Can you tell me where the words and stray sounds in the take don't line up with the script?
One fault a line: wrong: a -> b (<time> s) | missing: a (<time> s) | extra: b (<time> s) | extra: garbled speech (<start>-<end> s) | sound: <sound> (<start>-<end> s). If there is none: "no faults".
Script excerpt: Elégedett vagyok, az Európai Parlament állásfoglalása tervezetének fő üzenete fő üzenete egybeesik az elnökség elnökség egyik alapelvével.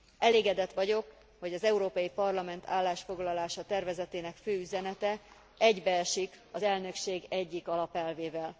extra: hogy (1.4 s)
missing: fő üzenete (5.2 s)
missing: elnökség (7.2 s)